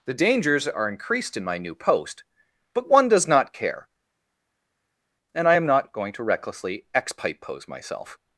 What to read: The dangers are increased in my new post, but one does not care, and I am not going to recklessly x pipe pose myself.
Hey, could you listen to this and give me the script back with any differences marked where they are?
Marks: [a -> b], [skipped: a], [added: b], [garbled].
The dangers are increased in my new post, but one does not care, and I am not going to recklessly x pipe pose myself.